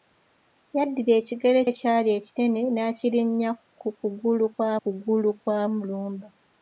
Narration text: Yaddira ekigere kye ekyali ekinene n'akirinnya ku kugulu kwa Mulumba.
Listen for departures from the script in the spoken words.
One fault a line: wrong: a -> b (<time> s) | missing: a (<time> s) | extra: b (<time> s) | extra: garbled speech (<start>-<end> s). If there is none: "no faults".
missing: kye (1.6 s)
extra: kugulu kwa (4.8 s)